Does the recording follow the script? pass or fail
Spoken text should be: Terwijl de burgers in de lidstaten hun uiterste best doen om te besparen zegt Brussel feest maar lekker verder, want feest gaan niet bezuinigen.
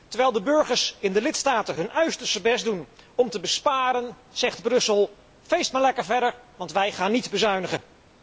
fail